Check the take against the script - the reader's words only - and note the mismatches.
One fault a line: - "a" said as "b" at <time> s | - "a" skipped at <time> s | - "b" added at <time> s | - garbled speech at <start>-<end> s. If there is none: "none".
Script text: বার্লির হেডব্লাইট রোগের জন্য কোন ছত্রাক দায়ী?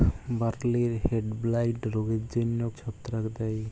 - "কোন" skipped at 2.6 s